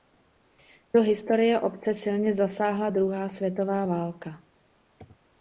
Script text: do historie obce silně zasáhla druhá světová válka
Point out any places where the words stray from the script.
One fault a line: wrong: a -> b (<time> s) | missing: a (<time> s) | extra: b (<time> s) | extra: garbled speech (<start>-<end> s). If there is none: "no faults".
no faults